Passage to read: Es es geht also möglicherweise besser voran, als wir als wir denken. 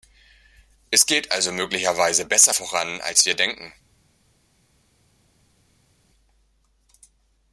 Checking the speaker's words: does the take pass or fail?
fail